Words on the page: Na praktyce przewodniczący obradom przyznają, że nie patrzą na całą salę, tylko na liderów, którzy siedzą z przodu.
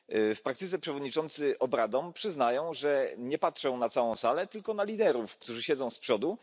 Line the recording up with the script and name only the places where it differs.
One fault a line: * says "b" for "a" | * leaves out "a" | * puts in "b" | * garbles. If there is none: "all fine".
* says "W" for "Na"